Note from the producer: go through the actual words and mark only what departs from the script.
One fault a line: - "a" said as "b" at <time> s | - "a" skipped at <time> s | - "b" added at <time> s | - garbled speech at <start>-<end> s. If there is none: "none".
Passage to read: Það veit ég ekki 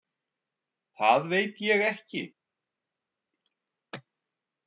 none